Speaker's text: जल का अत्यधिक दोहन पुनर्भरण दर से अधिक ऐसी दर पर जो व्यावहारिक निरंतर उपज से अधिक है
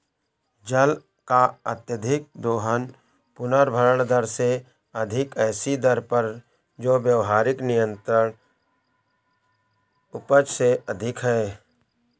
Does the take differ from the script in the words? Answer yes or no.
no